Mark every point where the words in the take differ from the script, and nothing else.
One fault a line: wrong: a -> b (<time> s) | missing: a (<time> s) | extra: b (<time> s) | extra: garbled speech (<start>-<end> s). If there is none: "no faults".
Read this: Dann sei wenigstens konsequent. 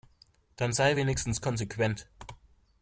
no faults